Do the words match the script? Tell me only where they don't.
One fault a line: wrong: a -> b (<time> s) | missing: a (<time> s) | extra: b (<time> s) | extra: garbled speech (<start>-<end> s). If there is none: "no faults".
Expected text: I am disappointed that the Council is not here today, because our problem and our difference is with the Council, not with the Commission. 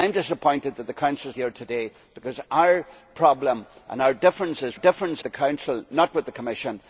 missing: not (1.4 s)
wrong: with -> difference (4.7 s)